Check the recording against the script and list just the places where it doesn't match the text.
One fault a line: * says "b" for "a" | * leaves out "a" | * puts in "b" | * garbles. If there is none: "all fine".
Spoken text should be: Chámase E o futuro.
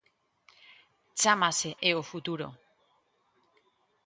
all fine